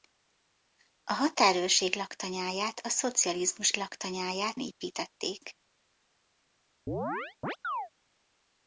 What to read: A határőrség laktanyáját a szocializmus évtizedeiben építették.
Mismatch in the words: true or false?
true